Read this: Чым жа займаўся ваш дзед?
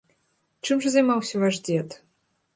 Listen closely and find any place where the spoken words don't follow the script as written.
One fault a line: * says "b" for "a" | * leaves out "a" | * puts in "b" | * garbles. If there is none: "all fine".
all fine